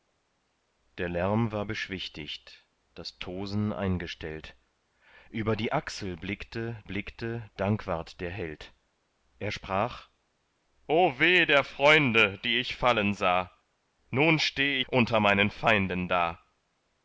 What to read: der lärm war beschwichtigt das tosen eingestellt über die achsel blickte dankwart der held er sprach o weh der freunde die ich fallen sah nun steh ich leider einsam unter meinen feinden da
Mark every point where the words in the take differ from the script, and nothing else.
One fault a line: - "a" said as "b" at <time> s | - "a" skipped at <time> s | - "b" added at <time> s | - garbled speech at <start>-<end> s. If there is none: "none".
- "blickte" added at 6.8 s
- "ich leider einsam" skipped at 14.8 s